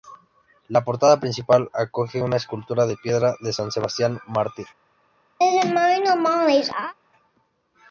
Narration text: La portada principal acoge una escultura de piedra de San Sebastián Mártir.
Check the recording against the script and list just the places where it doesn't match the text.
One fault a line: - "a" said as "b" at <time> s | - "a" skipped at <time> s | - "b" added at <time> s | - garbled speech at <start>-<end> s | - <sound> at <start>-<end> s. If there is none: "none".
- laugh at 5.4-6.9 s